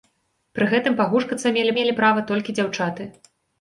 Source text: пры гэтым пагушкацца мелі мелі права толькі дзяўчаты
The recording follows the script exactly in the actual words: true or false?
true